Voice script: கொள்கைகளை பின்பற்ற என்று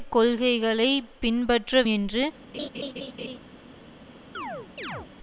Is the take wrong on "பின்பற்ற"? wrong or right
right